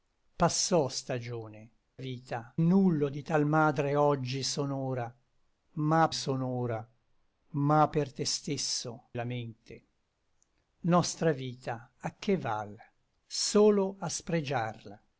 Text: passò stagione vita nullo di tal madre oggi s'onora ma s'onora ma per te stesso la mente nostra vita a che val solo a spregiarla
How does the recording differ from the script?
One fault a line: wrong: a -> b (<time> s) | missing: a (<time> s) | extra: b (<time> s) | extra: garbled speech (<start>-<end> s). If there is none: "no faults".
no faults